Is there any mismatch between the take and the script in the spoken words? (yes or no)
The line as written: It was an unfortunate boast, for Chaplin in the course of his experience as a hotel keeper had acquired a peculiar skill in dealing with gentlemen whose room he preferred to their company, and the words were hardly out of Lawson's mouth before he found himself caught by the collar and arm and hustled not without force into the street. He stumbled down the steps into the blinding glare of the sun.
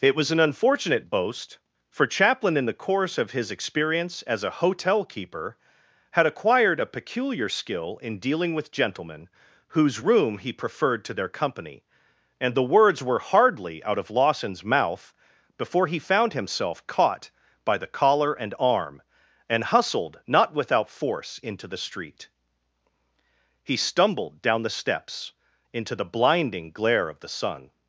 no